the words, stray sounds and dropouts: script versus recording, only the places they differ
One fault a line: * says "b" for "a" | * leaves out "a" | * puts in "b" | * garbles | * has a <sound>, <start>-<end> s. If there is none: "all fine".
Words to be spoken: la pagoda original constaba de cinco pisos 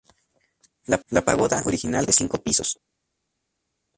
* puts in "la"
* leaves out "constaba"